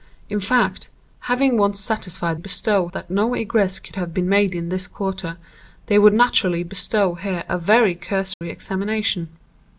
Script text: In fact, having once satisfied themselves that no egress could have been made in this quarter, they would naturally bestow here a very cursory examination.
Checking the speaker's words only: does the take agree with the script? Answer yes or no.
no